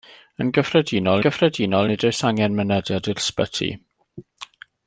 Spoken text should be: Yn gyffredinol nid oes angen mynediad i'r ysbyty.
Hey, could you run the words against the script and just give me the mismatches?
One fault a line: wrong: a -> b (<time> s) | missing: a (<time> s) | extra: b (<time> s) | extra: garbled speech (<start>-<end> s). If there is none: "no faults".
extra: gyffredinol (1.2 s)